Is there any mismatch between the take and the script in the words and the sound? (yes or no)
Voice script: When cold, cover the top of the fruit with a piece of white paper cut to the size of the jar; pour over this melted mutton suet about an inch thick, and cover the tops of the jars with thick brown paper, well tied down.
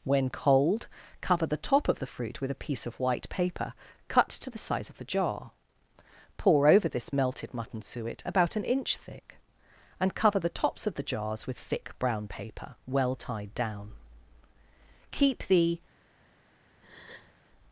yes